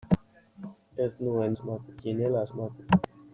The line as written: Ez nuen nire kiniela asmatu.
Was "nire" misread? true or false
true